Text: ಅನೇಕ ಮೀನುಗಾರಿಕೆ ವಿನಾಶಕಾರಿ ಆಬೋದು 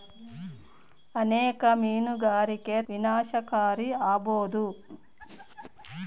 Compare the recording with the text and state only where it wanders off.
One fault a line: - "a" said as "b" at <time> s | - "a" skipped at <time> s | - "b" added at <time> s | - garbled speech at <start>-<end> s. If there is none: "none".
none